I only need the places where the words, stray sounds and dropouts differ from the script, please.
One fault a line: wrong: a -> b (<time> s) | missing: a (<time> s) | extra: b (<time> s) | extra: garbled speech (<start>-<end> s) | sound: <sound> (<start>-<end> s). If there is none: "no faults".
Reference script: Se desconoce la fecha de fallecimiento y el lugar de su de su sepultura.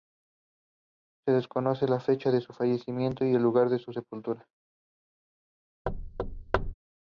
extra: su (2.4 s)
missing: de su (3.9 s)
sound: thud (5.9-6.7 s)